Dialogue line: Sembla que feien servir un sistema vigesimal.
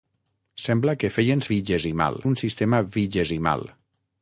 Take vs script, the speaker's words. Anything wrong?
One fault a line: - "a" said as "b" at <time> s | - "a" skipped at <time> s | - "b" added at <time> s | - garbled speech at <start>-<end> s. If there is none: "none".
- "servir" said as "vigesimal" at 1.5 s